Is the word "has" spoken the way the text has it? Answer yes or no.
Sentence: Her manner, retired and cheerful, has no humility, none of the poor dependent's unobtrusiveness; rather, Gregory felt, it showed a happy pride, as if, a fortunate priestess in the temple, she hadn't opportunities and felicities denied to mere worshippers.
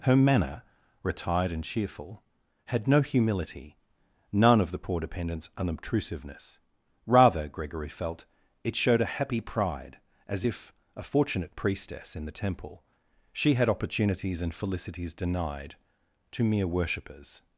no